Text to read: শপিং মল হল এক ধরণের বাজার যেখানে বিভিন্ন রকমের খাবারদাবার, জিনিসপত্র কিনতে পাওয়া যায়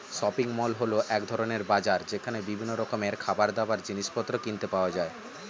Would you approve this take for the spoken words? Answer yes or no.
yes